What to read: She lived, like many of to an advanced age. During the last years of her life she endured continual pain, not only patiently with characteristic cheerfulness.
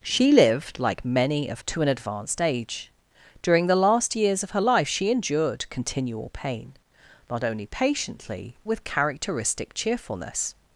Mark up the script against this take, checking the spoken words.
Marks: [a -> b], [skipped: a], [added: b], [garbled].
She lived, like many of to an advanced age. During the last years of her life she endured continual pain, not only patiently with characteristic cheerfulness.